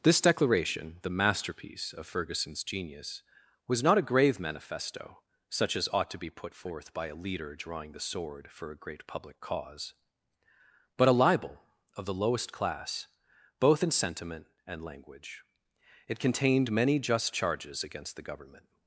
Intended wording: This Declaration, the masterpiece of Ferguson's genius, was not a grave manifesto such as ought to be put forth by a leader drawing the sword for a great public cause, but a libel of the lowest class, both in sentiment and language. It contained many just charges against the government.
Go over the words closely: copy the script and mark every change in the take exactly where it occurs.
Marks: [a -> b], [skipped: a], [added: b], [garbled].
This Declaration, the masterpiece of Ferguson's genius, was not a grave manifesto such as ought to be put forth by a leader drawing the sword for a great public cause, but a libel of the lowest class, both in sentiment and language. It contained many just charges against the government.